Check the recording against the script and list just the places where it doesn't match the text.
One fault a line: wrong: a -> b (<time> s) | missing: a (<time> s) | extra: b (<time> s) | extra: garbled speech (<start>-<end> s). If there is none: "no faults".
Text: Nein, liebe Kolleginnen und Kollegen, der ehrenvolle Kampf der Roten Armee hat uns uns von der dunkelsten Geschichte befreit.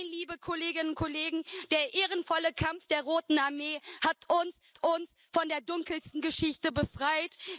no faults